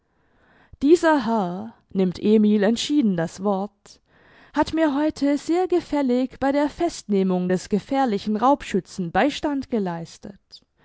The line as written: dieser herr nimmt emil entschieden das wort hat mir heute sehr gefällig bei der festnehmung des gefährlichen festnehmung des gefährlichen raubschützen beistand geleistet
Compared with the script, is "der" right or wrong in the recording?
right